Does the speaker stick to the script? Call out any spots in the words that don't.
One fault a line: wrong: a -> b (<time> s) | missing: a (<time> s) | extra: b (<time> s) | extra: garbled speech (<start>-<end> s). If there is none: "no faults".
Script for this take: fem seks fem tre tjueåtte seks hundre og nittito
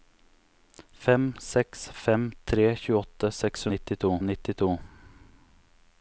wrong: hundre -> nittito (3.7 s)